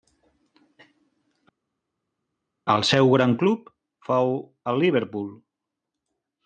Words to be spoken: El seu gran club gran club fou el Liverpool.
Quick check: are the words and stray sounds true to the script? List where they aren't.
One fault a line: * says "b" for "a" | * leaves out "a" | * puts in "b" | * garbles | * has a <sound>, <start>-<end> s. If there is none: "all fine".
* leaves out "gran club"